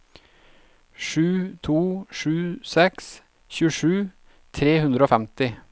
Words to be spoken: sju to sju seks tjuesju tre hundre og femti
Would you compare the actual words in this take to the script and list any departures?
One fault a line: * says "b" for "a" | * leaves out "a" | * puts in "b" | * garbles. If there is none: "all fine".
all fine